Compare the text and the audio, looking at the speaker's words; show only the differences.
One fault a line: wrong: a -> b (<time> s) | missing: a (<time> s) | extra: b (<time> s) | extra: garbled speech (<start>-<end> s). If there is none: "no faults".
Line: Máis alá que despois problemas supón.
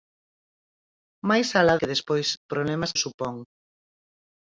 no faults